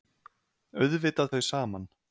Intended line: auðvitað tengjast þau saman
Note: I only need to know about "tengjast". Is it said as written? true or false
false